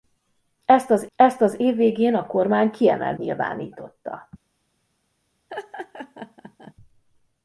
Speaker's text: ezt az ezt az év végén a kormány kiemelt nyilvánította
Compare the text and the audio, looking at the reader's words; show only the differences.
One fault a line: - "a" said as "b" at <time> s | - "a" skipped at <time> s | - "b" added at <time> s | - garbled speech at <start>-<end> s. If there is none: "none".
none